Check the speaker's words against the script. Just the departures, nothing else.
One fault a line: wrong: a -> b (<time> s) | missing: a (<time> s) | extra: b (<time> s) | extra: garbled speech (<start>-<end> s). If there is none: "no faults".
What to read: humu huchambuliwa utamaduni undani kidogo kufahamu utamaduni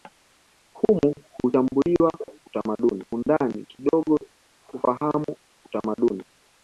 no faults